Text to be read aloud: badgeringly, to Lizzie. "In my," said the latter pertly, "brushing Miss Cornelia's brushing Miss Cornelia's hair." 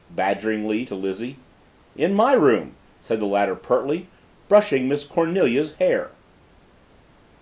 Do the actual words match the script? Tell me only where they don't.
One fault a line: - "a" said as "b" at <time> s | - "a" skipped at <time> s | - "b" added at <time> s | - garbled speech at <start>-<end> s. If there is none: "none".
- "room" added at 2.3 s
- "brushing Miss Cornelia's" skipped at 5.7 s